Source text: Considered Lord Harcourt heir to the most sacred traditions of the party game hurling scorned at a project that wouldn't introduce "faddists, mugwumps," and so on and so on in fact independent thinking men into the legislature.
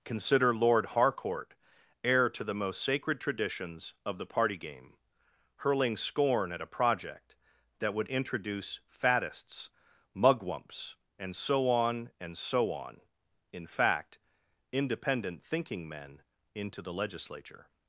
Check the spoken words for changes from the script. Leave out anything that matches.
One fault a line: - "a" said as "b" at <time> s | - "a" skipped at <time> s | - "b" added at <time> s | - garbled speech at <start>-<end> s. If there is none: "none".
- "Considered" said as "Consider" at 0.0 s
- "scorned" said as "scorn" at 6.0 s
- "wouldn't" said as "would" at 7.9 s